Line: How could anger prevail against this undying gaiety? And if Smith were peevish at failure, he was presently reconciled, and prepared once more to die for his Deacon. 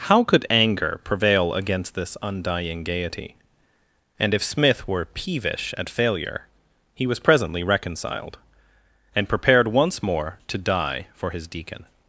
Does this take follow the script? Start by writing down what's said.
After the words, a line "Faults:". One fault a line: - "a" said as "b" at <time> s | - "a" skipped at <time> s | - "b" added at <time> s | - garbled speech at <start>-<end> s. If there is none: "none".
How could anger prevail against this undying gaiety? And if Smith were peevish at failure, he was presently reconciled, and prepared once more to die for his Deacon.
Faults:
none